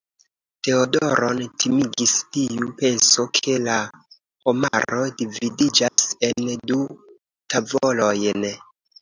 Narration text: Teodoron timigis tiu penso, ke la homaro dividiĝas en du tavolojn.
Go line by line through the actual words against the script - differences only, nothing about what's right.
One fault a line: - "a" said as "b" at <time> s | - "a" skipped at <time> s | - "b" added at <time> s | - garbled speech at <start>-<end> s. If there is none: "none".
none